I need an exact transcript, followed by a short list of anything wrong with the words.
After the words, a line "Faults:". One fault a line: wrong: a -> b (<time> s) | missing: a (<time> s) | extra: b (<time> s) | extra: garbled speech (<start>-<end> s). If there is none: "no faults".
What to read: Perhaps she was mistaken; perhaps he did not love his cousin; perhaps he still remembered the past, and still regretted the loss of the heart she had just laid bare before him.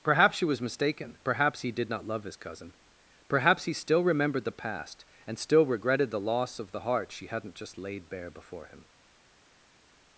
Perhaps she was mistaken; perhaps he did not love his cousin; perhaps he still remembered the past, and still regretted the loss of the heart she hadn't just laid bare before him.
Faults:
wrong: had -> hadn't (7.3 s)